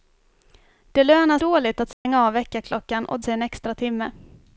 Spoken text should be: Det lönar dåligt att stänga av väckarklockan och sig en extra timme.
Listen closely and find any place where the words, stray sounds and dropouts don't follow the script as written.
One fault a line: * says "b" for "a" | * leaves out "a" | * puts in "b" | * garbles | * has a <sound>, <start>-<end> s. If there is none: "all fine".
* has a dropout, 1.9-2.1 s